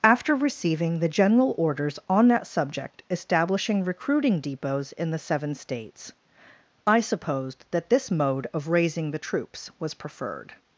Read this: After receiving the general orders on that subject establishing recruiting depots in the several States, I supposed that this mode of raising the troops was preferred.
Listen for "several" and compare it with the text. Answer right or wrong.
wrong